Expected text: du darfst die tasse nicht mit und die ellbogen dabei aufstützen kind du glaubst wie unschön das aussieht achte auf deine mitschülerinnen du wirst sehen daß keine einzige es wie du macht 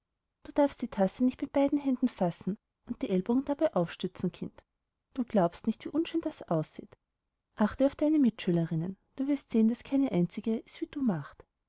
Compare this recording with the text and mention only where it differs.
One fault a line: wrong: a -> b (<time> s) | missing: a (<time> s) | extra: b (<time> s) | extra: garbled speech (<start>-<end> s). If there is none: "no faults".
extra: beiden händen fassen (1.5 s)
extra: nicht (5.7 s)